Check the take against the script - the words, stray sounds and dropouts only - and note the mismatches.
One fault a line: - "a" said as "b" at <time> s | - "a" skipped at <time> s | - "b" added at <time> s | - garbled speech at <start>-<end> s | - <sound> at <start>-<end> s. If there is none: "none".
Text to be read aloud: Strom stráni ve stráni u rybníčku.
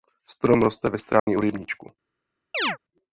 - "stráni" said as "roste" at 0.6 s
- dropout at 1.2-1.3 s
- chirp at 2.5-2.8 s